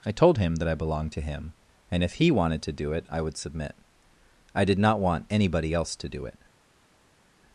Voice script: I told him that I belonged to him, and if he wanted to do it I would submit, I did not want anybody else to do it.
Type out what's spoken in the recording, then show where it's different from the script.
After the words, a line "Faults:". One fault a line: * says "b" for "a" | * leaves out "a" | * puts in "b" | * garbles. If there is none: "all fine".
I told him that I belonged to him, and if he wanted to do it I would submit, I did not want anybody else to do it.
Faults:
all fine